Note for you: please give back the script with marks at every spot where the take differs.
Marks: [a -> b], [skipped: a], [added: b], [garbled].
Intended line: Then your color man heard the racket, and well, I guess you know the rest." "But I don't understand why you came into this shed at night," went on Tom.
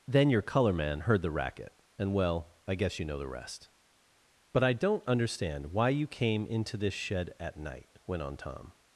Then your color man heard the racket, and well, I guess you know the rest." "But I don't understand why you came into this shed at night," went on Tom.